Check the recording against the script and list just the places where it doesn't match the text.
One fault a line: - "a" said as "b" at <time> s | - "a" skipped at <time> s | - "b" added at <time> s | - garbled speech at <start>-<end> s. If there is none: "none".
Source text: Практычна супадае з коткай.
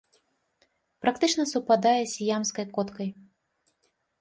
- "сіямскай" added at 2.1 s